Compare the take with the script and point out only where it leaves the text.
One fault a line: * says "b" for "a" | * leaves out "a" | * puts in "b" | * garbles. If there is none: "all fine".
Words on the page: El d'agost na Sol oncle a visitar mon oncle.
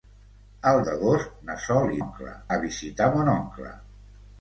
all fine